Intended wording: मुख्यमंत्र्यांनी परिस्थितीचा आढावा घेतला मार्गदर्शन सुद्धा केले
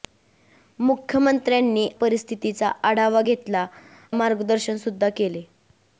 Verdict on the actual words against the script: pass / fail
pass